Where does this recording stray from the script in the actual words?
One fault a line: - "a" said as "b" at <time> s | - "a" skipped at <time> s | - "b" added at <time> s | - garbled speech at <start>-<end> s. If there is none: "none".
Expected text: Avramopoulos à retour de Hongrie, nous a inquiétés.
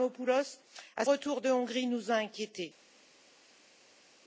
none